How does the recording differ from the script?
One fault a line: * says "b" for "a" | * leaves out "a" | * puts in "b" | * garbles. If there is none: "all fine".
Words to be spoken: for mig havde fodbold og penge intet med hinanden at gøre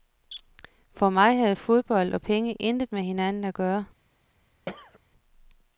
all fine